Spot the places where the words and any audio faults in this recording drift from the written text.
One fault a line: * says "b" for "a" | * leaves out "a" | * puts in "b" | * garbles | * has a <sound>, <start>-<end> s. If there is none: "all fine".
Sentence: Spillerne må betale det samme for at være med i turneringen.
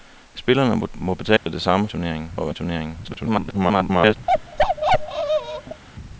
* has a dropout, 1.4-1.5 s
* says "turneringen" for "for"
* leaves out "med"
* garbles
* has a bark, 4.3-5.8 s